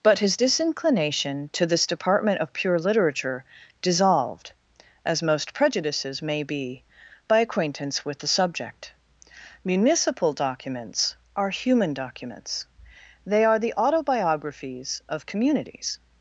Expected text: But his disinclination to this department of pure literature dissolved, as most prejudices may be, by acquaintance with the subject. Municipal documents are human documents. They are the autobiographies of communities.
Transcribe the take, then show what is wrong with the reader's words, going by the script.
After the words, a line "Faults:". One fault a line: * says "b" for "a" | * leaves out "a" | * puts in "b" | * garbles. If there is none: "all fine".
But his disinclination to this department of pure literature dissolved, as most prejudices may be, by acquaintance with the subject. Municipal documents are human documents. They are the autobiographies of communities.
Faults:
all fine